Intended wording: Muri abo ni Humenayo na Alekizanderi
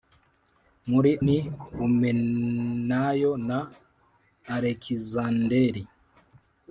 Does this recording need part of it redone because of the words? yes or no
yes